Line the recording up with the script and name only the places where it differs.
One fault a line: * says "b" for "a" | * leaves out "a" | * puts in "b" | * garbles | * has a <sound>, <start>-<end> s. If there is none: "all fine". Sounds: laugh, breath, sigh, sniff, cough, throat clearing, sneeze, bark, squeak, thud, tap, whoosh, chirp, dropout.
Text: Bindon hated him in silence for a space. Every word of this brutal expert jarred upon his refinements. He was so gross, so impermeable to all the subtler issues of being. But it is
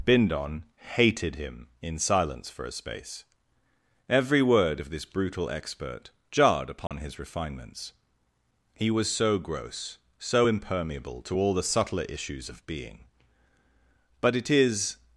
* has a dropout, 6.9-6.9 s